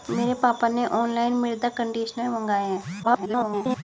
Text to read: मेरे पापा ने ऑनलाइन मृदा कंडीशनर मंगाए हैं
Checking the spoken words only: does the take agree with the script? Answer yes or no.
no